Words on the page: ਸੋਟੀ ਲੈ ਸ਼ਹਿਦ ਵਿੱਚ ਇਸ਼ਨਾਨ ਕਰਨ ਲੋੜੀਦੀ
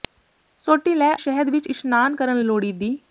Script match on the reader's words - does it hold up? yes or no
yes